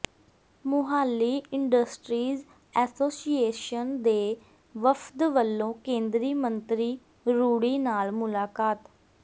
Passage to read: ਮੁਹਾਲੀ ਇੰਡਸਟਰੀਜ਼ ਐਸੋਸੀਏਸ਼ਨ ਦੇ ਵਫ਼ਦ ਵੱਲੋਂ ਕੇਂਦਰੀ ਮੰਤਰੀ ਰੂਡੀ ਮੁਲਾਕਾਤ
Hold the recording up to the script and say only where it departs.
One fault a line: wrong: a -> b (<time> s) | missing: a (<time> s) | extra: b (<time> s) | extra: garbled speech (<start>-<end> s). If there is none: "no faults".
extra: ਨਾਲ (7.8 s)